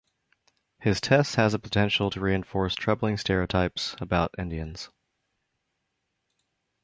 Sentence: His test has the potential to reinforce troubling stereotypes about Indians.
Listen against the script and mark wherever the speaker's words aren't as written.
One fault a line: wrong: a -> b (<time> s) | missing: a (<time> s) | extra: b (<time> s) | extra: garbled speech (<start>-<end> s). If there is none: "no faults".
no faults